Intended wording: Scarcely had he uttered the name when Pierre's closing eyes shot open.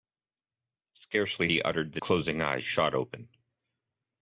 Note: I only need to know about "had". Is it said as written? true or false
false